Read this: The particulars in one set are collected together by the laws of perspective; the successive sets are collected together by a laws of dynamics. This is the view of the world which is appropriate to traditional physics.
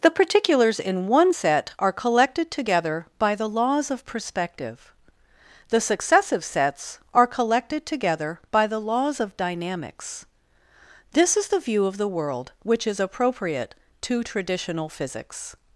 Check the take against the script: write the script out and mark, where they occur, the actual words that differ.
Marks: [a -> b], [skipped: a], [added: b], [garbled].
The particulars in one set are collected together by the laws of perspective; the successive sets are collected together by [a -> the] laws of dynamics. This is the view of the world which is appropriate to traditional physics.